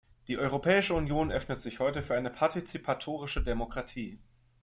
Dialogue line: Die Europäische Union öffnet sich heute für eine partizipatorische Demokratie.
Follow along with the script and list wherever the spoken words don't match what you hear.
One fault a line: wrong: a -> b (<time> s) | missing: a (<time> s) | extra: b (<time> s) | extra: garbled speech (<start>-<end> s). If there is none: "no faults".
no faults